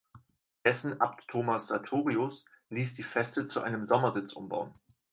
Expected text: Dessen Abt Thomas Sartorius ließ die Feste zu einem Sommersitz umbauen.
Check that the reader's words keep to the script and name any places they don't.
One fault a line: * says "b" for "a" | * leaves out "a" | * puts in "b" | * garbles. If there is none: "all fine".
all fine